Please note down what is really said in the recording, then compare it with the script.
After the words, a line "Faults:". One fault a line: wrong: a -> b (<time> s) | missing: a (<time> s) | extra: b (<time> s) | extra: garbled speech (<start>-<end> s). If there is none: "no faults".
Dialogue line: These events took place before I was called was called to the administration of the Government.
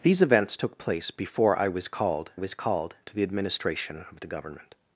These events took place before I was called was called to the administration of the Government.
Faults:
no faults